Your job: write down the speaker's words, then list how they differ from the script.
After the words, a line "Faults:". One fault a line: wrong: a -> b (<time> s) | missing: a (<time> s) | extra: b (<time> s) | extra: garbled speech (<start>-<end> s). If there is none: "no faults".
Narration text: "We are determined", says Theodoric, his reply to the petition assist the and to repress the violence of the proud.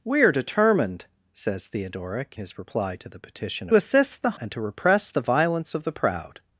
"We are determined", says Theodoric, his reply to the petition assist the and to repress the violence of the proud.
Faults:
no faults